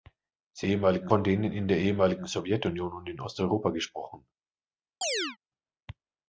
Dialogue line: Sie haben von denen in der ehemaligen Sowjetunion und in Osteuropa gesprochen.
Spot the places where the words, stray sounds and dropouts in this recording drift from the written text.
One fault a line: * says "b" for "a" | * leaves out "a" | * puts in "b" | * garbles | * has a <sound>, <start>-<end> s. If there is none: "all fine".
* says "ehemaligen" for "haben"
* has a chirp, 5.0-5.4 s